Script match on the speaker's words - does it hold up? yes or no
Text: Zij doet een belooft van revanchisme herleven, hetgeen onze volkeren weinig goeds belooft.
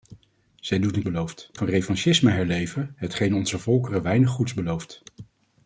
yes